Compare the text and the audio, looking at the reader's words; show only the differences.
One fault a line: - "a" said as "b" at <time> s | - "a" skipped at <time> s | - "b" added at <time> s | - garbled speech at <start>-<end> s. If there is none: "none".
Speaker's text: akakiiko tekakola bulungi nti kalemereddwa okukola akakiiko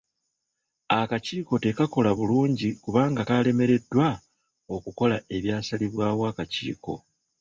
- "nti" said as "kubanga" at 2.8 s
- "ebyasalibwawo" added at 5.3 s